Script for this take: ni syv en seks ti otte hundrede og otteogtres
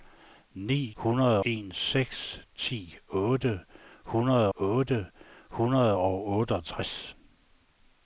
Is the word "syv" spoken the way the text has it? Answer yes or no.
no